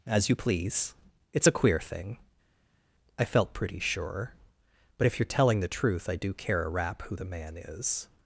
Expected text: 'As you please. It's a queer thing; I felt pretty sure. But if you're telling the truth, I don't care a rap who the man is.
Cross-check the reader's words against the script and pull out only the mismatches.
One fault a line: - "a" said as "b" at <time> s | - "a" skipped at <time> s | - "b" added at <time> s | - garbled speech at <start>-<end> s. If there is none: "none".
- "don't" said as "do" at 6.2 s